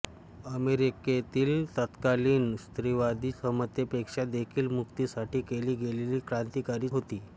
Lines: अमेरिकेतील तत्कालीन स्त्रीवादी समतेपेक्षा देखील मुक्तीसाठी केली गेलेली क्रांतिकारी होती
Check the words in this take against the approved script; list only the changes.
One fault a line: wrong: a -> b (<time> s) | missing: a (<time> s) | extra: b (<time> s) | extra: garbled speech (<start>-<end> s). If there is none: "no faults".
no faults